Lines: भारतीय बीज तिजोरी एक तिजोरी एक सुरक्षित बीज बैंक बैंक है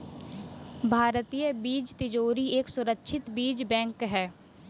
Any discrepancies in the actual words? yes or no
yes